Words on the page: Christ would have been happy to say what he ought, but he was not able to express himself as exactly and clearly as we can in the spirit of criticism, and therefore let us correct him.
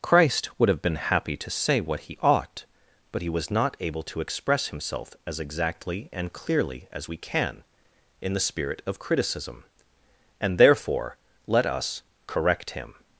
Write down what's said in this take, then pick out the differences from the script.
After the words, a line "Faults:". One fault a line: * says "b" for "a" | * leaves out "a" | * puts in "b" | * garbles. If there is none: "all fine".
Christ would have been happy to say what he ought, but he was not able to express himself as exactly and clearly as we can in the spirit of criticism, and therefore let us correct him.
Faults:
all fine